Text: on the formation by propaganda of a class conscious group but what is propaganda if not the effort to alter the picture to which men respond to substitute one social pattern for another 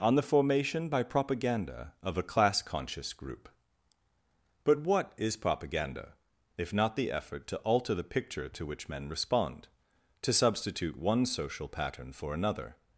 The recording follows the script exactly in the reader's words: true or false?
true